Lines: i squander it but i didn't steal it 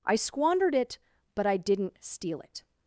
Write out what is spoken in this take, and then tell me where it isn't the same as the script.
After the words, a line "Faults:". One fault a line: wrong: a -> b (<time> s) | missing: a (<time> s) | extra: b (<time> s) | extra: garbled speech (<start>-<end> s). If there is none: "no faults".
i squandered it but i didn't steal it
Faults:
wrong: squander -> squandered (0.1 s)